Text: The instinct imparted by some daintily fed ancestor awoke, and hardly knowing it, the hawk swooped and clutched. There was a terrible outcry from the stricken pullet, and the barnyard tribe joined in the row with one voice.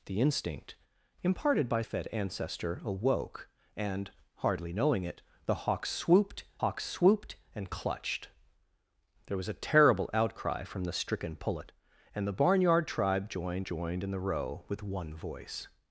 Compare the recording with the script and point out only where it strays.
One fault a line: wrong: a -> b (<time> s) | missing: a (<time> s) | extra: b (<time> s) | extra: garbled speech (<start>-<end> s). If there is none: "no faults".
missing: some daintily (1.8 s)
extra: hawk swooped (6.6 s)
extra: joined (13.6 s)